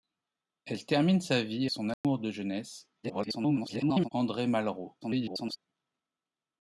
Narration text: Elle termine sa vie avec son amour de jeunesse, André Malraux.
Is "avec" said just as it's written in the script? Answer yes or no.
no